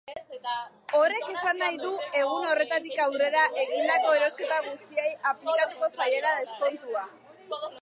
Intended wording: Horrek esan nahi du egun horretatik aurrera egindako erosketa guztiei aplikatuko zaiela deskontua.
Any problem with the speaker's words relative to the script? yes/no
no